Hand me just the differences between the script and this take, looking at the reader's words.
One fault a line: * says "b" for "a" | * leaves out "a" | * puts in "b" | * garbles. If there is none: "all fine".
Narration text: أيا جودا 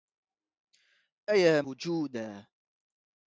all fine